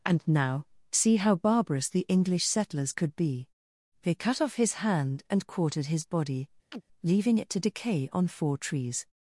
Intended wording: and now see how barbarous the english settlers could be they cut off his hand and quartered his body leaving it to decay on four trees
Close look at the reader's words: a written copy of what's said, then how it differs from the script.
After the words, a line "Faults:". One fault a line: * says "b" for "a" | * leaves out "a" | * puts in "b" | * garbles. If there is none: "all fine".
and now see how barbarous the english settlers could be they cut off his hand and quartered his body leaving it to decay on four trees
Faults:
all fine